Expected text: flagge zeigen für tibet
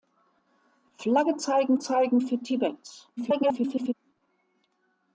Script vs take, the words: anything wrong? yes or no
yes